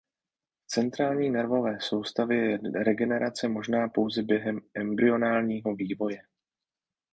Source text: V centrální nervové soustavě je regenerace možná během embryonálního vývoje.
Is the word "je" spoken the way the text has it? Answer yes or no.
yes